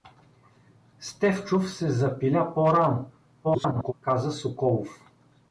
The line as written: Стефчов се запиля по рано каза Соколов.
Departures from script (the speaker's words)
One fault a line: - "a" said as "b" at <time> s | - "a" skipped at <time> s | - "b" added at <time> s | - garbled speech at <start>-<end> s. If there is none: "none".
- garbled speech at 3.4-3.9 s